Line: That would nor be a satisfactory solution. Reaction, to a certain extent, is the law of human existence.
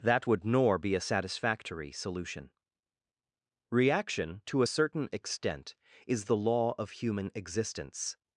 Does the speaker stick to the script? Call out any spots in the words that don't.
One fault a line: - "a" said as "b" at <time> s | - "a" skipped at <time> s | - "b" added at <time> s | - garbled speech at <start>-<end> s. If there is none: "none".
none